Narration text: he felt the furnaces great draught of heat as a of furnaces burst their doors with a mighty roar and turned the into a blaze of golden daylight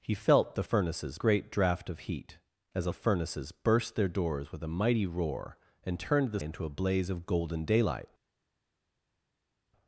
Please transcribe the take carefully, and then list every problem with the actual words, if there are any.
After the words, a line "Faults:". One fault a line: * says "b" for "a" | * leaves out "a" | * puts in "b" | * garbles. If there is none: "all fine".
he felt the furnaces great draught of heat as a of furnaces burst their doors with a mighty roar and turned the into a blaze of golden daylight
Faults:
all fine